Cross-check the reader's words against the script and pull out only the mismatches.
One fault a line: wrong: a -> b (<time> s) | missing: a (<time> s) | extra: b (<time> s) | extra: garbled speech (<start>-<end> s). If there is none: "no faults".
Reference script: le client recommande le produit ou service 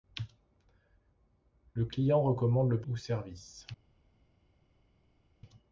missing: produit (2.8 s)